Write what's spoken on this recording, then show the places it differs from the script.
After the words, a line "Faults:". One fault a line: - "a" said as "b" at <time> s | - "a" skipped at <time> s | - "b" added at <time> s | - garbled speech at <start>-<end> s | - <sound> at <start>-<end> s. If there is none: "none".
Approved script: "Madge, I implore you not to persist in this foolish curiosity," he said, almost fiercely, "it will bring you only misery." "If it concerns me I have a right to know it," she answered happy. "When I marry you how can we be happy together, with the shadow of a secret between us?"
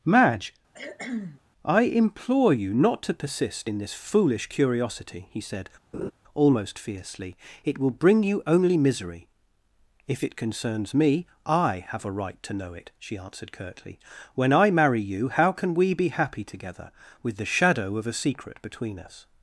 "Madge, I implore you not to persist in this foolish curiosity," he said, almost fiercely, "it will bring you only misery." "If it concerns me I have a right to know it," she answered curtly. "When I marry you how can we be happy together, with the shadow of a secret between us?"
Faults:
- cough at 0.7-1.4 s
- laugh at 5.9-6.1 s
- "happy" said as "curtly" at 13.5 s